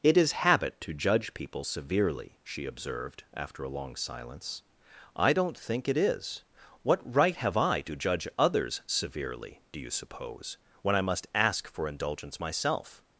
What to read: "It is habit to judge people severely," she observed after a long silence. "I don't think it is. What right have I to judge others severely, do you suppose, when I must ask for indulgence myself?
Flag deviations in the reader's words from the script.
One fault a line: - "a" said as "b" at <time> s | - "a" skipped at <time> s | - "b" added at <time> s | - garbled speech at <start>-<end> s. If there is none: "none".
none